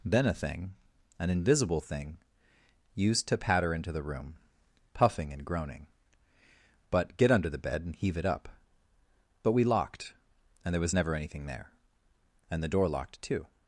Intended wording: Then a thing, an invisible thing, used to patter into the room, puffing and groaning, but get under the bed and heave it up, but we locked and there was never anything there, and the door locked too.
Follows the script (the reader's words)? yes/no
yes